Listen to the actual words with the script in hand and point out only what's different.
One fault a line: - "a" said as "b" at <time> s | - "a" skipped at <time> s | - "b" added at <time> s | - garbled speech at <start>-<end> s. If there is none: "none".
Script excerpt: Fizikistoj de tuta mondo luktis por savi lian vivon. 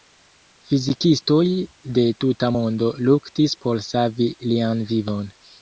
none